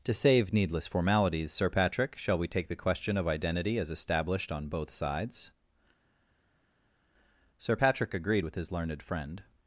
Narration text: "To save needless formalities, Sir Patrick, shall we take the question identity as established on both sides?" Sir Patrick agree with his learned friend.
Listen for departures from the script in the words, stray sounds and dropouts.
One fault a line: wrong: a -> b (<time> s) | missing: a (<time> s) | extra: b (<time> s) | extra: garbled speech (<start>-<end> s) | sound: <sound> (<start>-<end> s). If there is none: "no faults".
extra: of (3.2 s)
wrong: agree -> agreed (8.1 s)